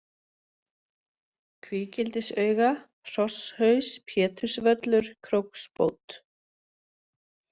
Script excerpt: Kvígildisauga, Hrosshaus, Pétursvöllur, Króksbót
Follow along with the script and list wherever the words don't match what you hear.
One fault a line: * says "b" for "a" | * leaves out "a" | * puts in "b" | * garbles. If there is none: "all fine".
all fine